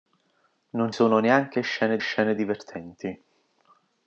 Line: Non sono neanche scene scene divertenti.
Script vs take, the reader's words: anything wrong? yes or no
no